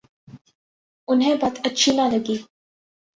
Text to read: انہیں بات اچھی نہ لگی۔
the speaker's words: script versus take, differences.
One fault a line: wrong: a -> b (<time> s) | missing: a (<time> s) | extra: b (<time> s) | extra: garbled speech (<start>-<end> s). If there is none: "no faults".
no faults